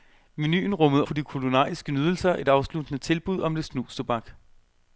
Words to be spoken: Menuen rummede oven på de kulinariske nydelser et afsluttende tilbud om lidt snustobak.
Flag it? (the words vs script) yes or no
yes